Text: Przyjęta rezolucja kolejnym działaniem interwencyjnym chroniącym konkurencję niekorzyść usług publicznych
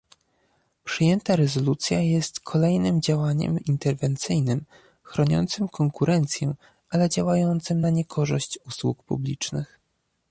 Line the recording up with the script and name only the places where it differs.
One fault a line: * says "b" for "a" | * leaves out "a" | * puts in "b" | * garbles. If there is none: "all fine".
* puts in "jest"
* puts in "ale działającym na"